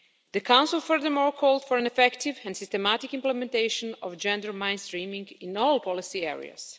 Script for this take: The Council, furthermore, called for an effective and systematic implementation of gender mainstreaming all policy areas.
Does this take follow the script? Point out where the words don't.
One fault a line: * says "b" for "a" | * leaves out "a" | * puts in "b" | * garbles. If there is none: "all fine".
* puts in "in"